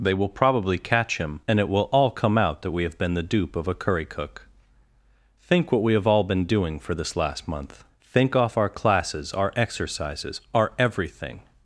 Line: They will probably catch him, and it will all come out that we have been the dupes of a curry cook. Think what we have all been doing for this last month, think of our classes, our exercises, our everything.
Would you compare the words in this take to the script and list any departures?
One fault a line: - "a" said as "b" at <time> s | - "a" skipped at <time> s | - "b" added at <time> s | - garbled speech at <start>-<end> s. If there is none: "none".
- "dupes" said as "dupe" at 3.2 s
- "of" said as "off" at 8.3 s